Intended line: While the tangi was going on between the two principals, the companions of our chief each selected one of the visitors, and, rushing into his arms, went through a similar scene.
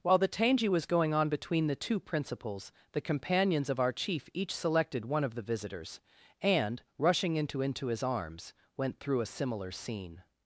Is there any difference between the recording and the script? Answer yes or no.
yes